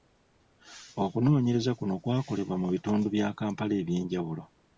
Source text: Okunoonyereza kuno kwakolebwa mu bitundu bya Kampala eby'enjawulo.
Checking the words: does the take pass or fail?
pass